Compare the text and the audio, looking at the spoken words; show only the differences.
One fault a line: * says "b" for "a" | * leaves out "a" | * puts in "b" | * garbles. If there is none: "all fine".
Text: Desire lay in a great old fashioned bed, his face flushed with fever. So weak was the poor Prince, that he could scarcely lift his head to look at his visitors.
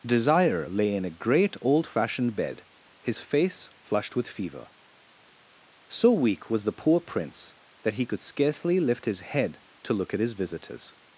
all fine